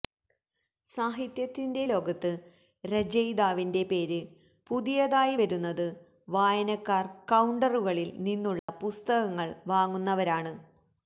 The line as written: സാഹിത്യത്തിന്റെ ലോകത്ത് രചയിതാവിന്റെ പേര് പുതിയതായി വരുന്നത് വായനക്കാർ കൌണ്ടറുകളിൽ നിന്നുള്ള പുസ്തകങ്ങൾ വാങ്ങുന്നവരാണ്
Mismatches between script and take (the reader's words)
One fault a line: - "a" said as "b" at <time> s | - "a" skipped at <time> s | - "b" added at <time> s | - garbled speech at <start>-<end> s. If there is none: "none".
none